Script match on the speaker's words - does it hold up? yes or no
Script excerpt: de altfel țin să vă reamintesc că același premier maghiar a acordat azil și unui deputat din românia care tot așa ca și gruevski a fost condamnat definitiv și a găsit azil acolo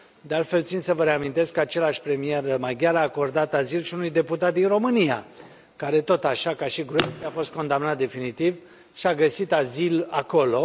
yes